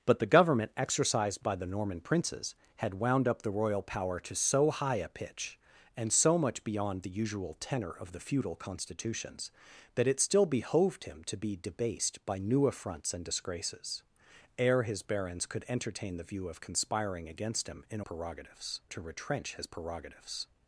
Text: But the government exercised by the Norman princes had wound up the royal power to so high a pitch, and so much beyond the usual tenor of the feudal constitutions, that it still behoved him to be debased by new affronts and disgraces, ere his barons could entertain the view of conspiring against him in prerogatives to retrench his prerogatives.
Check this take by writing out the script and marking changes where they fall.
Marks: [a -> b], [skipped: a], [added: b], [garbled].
But the government exercised by the Norman princes had wound up the royal power to so high a pitch, and so much beyond the usual tenor of the feudal constitutions, that it still behoved him to be debased by new affronts and disgraces, ere his barons could entertain the view of conspiring against him in prerogatives to retrench his prerogatives.